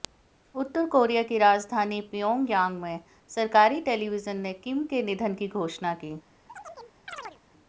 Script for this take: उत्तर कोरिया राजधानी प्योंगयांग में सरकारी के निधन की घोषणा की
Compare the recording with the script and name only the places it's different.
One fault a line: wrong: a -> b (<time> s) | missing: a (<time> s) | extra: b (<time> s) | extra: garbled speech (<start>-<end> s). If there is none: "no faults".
extra: की (1.2 s)
extra: टेलीविजन ने किम (3.8 s)